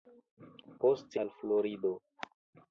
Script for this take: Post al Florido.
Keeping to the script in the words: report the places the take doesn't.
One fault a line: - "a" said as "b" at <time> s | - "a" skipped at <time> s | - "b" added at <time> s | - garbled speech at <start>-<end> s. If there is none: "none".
none